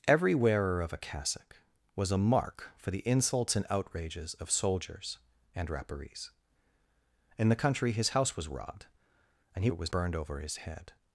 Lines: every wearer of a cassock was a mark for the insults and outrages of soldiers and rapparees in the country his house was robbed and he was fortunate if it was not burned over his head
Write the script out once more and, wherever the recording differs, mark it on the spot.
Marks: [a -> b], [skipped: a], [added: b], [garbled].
every wearer of a cassock was a mark for the insults and outrages of soldiers and rapparees in the country his house was robbed and he [skipped: was fortunate if] it was [skipped: not] burned over his head